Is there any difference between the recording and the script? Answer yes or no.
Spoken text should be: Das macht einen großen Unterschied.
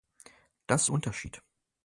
yes